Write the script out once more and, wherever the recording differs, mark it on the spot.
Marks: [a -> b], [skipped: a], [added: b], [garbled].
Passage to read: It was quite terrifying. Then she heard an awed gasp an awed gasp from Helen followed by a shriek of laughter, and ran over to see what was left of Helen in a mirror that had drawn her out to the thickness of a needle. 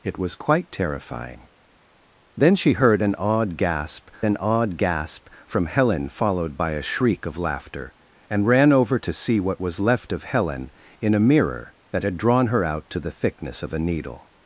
It was quite terrifying. Then she heard an awed gasp an awed gasp from Helen followed by a shriek of laughter, and ran over to see what was left of Helen in a mirror that had drawn her out to the thickness of a needle.